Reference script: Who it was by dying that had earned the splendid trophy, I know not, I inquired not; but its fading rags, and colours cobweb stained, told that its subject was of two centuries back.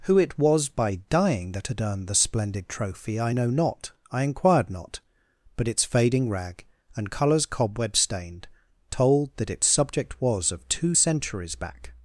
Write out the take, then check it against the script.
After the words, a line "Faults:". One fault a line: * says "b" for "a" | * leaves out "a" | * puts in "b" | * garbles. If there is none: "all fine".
Who it was by dying that had earned the splendid trophy, I know not, I inquired not; but its fading rag, and colours cobweb stained, told that its subject was of two centuries back.
Faults:
* says "rag" for "rags"